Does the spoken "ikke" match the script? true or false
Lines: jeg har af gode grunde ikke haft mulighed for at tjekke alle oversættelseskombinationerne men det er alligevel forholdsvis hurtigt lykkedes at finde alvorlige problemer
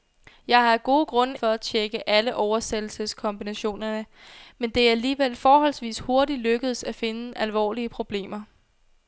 false